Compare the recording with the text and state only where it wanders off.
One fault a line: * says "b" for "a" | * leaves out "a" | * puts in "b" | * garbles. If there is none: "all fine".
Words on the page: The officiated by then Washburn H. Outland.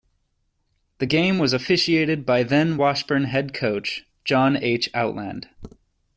* puts in "game was"
* puts in "head coach John"